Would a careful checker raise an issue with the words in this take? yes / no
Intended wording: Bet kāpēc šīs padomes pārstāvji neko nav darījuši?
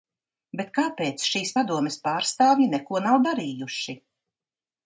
no